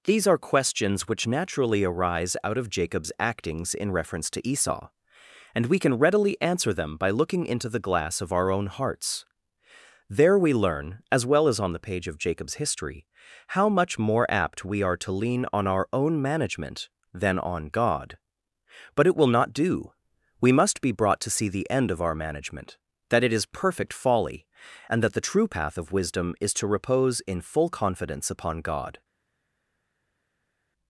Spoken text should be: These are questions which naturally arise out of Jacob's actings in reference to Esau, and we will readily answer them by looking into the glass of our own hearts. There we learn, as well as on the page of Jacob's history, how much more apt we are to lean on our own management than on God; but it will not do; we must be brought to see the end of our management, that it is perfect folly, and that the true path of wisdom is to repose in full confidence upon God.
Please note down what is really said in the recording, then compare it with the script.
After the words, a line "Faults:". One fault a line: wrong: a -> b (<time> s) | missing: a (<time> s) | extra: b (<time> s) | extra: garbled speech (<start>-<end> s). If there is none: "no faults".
These are questions which naturally arise out of Jacob's actings in reference to Esau, and we can readily answer them by looking into the glass of our own hearts. There we learn, as well as on the page of Jacob's history, how much more apt we are to lean on our own management than on God; but it will not do; we must be brought to see the end of our management, that it is perfect folly, and that the true path of wisdom is to repose in full confidence upon God.
Faults:
wrong: will -> can (5.8 s)